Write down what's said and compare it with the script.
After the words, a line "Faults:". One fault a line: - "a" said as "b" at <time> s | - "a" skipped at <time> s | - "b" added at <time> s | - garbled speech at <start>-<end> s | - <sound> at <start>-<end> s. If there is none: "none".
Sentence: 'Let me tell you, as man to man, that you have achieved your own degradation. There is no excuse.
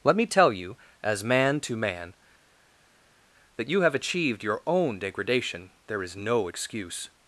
'Let me tell you, as man to man, that you have achieved your own degradation. There is no excuse.
Faults:
none